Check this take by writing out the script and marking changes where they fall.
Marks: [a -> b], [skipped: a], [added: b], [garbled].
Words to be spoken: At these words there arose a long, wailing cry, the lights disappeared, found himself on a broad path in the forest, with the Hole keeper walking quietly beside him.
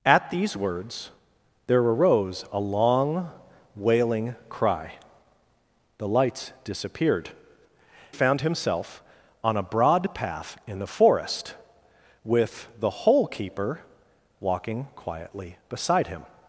At these words there arose a long, wailing cry, the lights disappeared, found himself on a broad path in the forest, with the Hole keeper walking quietly beside him.